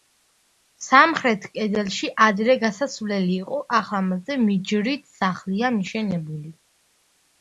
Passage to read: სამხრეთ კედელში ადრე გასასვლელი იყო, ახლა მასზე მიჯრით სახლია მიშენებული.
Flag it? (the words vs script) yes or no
no